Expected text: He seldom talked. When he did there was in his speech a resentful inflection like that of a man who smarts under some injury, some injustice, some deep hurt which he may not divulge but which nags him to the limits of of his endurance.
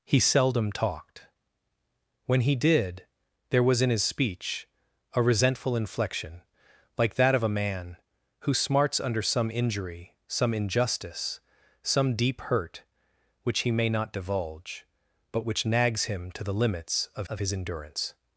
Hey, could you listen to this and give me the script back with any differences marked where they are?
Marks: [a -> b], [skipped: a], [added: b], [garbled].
He seldom talked. When he did there was in his speech a resentful inflection like that of a man who smarts under some injury, some injustice, some deep hurt which he may not divulge but which nags him to the limits of of his endurance.